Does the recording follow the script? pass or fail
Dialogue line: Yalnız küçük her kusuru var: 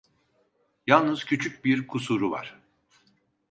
fail